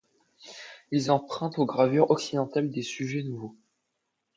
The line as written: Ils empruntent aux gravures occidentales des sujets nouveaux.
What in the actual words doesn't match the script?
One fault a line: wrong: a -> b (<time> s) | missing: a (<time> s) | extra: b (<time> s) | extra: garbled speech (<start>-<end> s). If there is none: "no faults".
no faults